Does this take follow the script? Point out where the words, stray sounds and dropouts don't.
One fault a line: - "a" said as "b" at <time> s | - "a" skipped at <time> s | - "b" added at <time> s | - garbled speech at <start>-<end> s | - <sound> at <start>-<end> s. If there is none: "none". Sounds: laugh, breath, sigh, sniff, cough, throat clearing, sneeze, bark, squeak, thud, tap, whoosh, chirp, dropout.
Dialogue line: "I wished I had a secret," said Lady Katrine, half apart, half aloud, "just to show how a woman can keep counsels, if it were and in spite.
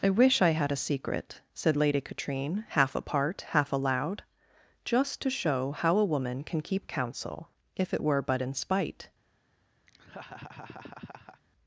- "wished" said as "wish" at 0.1 s
- "counsels" said as "counsel" at 6.9 s
- "and" said as "but" at 8.2 s
- laugh at 9.9-11.4 s